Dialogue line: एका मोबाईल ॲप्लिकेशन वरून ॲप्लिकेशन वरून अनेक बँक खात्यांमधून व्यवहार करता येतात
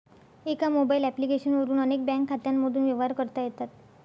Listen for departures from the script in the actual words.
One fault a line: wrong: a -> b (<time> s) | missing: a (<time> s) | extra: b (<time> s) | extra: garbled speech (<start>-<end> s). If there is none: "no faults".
missing: ॲप्लिकेशन वरून (1.8 s)